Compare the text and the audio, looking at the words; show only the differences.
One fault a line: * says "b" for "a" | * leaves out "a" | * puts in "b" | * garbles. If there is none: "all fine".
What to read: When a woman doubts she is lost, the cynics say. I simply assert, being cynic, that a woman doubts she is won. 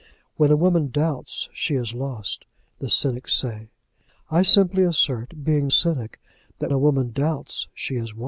all fine